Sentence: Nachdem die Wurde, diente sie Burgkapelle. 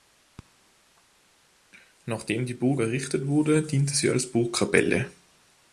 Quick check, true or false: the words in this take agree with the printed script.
false